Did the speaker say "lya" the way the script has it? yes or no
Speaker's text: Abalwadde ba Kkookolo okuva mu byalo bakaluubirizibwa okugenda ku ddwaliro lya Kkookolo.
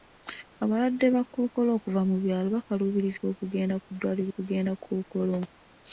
no